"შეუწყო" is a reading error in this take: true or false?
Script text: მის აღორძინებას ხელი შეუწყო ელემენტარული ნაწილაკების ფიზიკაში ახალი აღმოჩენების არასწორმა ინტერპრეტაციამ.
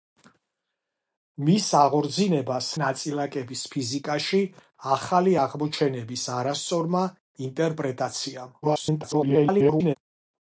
true